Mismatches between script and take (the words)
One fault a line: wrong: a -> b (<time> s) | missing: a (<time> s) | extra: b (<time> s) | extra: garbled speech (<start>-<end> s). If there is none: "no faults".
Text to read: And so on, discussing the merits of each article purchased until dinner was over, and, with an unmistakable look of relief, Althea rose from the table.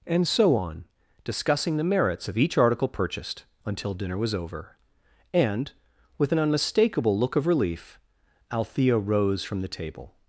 no faults